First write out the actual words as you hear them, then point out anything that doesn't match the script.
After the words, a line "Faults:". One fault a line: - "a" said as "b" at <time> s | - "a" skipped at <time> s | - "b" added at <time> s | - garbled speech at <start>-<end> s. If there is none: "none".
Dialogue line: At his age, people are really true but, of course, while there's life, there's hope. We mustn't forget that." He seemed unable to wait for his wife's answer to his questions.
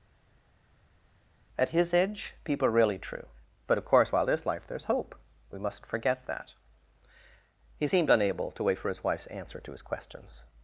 At his age, people are really true but, of course, while there's life, there's hope. We mustn't forget that." He seemed unable to wait for his wife's answer to his questions.
Faults:
none